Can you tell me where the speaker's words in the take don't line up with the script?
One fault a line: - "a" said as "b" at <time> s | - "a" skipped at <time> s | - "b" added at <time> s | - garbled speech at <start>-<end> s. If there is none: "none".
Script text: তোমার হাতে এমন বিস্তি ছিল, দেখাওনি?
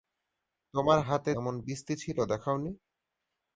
none